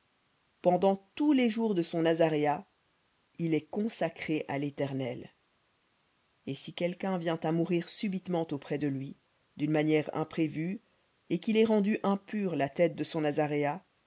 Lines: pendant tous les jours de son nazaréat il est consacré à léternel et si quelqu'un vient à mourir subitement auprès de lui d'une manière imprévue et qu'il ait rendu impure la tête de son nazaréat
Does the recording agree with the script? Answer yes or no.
yes